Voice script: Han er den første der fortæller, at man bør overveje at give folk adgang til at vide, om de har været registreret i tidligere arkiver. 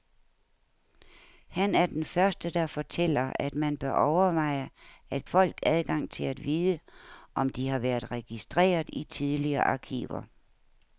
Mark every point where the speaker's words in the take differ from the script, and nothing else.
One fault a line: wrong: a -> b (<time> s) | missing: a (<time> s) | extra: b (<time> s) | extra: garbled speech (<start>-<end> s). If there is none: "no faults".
missing: give (5.3 s)